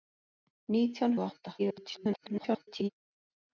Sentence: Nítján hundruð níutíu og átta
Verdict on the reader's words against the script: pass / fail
fail